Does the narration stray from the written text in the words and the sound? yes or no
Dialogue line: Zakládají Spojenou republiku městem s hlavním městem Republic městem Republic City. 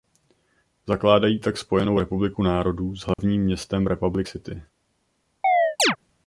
yes